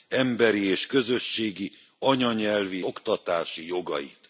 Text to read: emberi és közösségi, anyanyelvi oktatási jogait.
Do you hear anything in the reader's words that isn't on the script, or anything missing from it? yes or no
no